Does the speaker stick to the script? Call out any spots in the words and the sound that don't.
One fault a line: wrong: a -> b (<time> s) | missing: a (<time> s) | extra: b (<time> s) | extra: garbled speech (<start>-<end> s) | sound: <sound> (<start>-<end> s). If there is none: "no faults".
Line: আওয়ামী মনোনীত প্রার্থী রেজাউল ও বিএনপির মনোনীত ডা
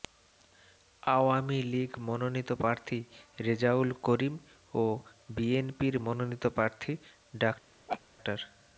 extra: লীগ (1.6 s)
extra: করিম (4.0 s)
extra: প্রার্থী (6.5 s)
sound: laugh (7.9-8.0 s)